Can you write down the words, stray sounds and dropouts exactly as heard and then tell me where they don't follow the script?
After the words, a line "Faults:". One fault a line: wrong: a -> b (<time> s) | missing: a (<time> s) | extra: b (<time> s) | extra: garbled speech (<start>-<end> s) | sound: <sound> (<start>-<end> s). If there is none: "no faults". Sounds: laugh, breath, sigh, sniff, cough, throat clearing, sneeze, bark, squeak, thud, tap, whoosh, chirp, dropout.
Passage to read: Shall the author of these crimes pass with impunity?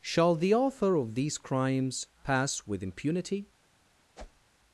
Shall the author of these crimes pass with impunity?
Faults:
sound: whoosh (4.1-4.5 s)